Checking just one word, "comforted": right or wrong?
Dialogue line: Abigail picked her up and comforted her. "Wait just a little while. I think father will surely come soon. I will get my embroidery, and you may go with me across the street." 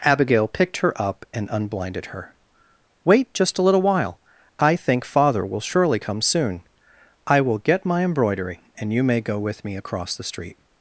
wrong